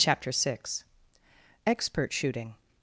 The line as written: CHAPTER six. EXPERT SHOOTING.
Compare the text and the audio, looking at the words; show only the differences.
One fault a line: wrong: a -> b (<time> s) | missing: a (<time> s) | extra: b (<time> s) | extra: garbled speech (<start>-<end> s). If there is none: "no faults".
no faults